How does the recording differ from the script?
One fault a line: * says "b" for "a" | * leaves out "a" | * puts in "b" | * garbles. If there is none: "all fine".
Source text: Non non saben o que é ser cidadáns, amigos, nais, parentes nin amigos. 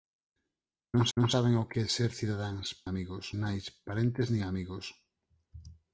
all fine